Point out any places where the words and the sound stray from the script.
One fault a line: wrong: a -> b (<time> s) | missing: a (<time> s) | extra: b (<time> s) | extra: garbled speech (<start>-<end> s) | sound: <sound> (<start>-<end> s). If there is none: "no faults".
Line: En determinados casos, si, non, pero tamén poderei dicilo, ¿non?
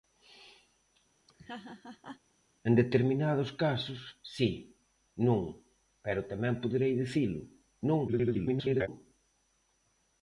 sound: laugh (1.3-2.2 s)
extra: garbled speech (8.1-8.9 s)